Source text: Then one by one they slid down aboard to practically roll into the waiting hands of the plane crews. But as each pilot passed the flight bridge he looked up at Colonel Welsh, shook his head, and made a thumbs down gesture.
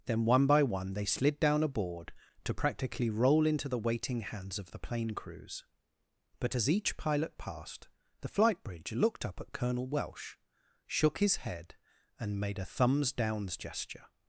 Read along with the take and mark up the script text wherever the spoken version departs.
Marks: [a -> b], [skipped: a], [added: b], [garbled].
Then one by one they slid down aboard to practically roll into the waiting hands of the plane crews. But as each pilot passed the flight bridge [skipped: he] looked up at Colonel Welsh, shook his head, and made a thumbs [down -> downs] gesture.